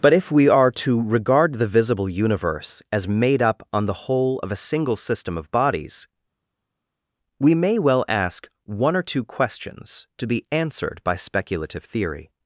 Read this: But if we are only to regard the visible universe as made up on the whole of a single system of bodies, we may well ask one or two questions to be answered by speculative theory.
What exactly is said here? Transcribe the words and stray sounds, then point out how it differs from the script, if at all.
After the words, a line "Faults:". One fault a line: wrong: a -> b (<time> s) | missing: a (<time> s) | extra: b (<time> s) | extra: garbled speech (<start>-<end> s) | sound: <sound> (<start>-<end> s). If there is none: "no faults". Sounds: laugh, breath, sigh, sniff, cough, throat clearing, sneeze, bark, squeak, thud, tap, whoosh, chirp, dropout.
But if we are to regard the visible universe as made up on the whole of a single system of bodies, we may well ask one or two questions to be answered by speculative theory.
Faults:
missing: only (0.7 s)